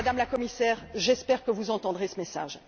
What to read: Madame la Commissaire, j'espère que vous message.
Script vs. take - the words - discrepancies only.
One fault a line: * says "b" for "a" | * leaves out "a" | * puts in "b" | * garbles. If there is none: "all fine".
* puts in "entendrez ce"